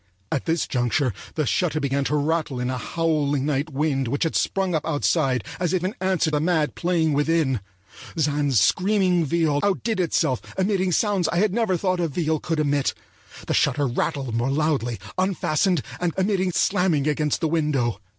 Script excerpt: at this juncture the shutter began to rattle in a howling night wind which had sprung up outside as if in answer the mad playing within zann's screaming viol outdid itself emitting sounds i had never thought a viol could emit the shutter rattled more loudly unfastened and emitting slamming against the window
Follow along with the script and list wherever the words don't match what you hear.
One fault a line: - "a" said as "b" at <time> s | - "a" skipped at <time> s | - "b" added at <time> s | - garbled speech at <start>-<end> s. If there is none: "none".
none